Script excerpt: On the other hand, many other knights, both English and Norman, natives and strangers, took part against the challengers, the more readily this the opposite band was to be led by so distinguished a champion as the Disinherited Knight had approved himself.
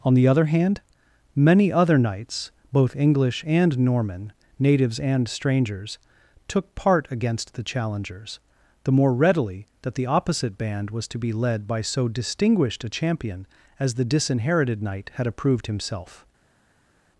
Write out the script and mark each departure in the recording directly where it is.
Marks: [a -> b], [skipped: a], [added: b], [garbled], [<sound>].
On the other hand, many other knights, both English and Norman, natives and strangers, took part against the challengers, the more readily [this -> that] the opposite band was to be led by so distinguished a champion as the Disinherited Knight had approved himself.